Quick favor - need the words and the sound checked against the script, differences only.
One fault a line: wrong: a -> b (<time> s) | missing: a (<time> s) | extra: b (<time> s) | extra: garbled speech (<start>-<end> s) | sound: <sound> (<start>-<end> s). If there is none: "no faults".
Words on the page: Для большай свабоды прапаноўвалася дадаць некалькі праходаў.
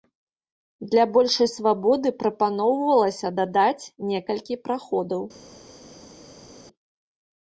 no faults